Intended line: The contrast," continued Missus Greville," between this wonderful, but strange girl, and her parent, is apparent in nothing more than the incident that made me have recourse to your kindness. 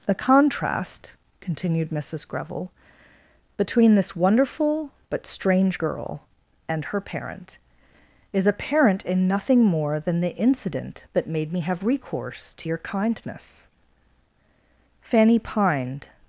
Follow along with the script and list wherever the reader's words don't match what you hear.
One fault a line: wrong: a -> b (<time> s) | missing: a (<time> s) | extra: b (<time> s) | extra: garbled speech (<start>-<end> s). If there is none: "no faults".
extra: Fanny pined (15.0 s)